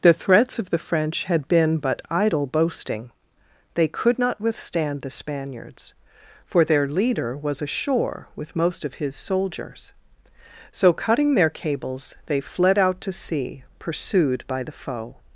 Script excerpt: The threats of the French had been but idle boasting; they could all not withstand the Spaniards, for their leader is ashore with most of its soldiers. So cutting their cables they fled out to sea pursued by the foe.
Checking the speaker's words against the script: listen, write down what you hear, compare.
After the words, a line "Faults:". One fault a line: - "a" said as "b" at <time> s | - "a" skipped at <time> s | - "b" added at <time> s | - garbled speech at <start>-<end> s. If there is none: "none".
The threats of the French had been but idle boasting; they could not withstand the Spaniards, for their leader was ashore with most of his soldiers. So cutting their cables they fled out to sea pursued by the foe.
Faults:
- "all" skipped at 4.2 s
- "is" said as "was" at 7.4 s
- "its" said as "his" at 8.9 s